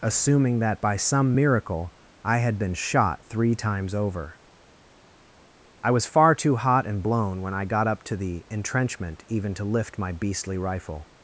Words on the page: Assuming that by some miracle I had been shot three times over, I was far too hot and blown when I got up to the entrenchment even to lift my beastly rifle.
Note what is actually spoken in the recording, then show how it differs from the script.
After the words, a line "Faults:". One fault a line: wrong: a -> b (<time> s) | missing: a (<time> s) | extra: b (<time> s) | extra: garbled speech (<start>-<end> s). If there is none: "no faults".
Assuming that by some miracle I had been shot three times over, I was far too hot and blown when I got up to the entrenchment even to lift my beastly rifle.
Faults:
no faults